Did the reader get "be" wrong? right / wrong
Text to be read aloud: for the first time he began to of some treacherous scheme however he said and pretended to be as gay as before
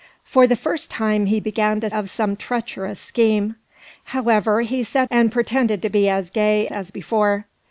right